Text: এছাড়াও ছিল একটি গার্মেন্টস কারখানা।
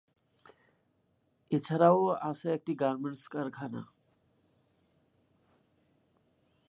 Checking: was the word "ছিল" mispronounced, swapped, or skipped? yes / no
yes